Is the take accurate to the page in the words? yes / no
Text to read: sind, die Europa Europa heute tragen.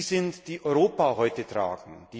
no